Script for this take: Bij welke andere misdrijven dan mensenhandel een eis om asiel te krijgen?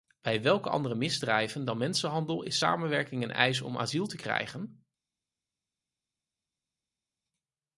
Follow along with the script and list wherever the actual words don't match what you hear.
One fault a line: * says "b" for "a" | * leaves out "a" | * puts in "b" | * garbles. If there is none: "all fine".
* puts in "is samenwerking"